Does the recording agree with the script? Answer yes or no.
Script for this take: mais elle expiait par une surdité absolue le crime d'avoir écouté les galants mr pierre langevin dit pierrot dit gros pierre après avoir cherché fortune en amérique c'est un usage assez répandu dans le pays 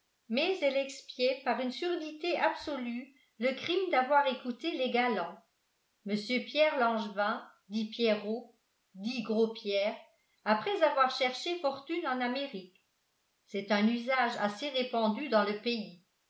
yes